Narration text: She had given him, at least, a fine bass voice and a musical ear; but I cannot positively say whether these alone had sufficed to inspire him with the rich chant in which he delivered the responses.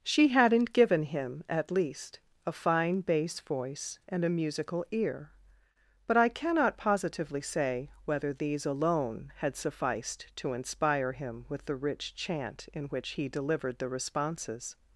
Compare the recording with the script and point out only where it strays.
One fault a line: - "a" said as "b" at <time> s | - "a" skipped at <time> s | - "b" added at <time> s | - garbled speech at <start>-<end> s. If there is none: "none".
- "had" said as "hadn't" at 0.3 s